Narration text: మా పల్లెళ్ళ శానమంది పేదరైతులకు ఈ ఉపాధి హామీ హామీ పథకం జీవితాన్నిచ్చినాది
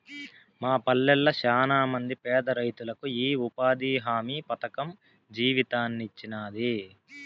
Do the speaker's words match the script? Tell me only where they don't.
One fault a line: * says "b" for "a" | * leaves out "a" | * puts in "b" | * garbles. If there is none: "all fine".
* leaves out "హామీ"